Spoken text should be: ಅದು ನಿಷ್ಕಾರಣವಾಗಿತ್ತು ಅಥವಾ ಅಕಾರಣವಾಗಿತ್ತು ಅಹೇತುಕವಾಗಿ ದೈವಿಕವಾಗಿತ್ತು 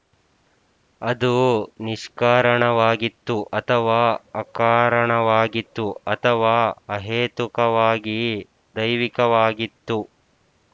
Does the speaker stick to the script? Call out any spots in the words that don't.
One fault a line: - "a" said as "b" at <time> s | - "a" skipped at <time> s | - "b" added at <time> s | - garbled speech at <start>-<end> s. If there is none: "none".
- "ಅಥವಾ" added at 6.1 s